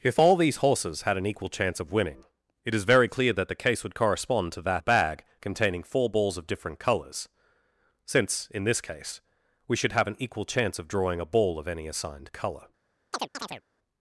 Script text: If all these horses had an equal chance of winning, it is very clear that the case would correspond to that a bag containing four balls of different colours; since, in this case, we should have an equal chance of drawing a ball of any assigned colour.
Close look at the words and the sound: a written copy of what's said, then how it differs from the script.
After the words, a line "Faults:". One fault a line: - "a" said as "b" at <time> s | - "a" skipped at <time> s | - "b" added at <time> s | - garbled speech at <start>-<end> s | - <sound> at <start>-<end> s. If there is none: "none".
If all these horses had an equal chance of winning, it is very clear that the case would correspond to that a bag containing four balls of different colours; since, in this case, we should have an equal chance of drawing a ball of any assigned colour.
Faults:
- chirp at 13.1-13.6 s